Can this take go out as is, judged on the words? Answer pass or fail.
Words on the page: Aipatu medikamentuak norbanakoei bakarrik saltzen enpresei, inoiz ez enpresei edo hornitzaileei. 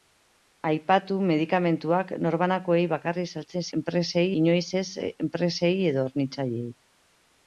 pass